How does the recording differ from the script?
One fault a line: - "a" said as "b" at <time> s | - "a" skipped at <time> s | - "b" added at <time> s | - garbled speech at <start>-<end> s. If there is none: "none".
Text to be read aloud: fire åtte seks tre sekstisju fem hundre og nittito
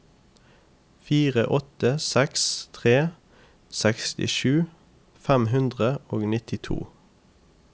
none